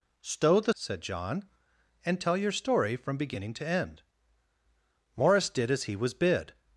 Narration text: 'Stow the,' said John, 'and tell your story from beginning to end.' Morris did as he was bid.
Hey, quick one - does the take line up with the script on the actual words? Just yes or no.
yes